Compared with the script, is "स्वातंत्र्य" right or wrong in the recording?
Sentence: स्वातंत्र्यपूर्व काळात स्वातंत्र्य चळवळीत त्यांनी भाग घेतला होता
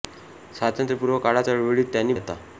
wrong